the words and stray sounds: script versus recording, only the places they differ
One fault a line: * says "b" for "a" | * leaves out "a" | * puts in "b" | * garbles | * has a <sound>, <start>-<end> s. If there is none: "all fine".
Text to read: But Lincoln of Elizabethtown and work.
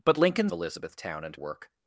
all fine